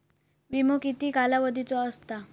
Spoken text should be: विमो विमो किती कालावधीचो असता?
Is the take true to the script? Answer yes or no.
no